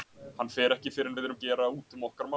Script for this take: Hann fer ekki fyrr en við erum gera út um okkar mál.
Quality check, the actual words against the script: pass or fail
pass